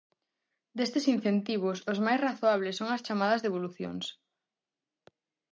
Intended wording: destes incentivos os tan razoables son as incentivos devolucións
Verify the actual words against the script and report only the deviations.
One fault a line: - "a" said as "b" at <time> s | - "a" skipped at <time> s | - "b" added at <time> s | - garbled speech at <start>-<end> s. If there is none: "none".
- "tan" said as "máis" at 2.0 s
- "incentivos" said as "chamadas" at 3.1 s